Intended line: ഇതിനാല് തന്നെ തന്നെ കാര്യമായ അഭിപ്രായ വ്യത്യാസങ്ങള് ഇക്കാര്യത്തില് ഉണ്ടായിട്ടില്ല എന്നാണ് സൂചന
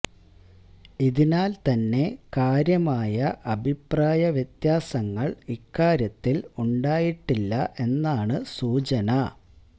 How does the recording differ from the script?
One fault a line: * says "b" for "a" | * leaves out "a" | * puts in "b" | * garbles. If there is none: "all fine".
* leaves out "തന്നെ"